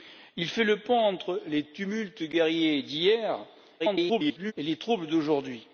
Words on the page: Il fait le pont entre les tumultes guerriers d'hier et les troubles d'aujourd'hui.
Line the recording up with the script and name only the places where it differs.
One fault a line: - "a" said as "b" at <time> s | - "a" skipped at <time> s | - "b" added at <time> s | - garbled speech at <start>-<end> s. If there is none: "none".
- garbled speech at 3.8-4.5 s